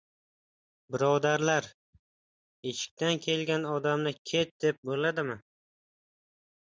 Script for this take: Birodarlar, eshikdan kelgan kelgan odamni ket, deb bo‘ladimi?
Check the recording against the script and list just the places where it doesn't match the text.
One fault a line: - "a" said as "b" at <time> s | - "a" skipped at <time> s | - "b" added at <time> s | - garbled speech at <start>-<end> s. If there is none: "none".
- "kelgan" skipped at 3.6 s